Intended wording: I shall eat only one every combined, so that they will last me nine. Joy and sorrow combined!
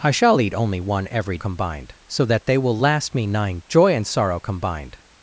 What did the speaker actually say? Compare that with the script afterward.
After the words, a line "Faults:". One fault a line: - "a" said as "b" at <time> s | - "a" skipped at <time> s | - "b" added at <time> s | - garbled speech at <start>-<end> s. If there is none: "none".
I shall eat only one every combined, so that they will last me nine. Joy and sorrow combined!
Faults:
none